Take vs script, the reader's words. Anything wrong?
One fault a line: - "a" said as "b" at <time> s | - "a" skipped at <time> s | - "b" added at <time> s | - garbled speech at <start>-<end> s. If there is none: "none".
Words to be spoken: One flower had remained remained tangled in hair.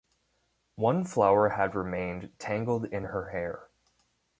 - "remained" skipped at 2.3 s
- "her" added at 3.0 s